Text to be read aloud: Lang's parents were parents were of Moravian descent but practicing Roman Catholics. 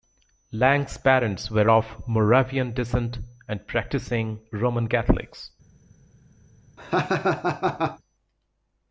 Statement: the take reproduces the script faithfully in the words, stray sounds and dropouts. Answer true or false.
false